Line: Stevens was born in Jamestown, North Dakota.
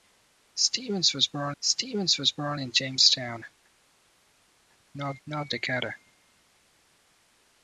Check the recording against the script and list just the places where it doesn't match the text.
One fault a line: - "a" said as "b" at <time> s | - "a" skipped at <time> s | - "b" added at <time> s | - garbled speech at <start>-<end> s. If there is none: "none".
- "stevens was born" added at 1.6 s
- "North" added at 5.3 s